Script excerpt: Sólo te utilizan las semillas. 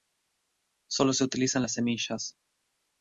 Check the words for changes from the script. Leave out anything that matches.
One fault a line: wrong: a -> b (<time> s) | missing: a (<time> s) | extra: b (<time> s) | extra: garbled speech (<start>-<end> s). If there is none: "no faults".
wrong: te -> se (1.1 s)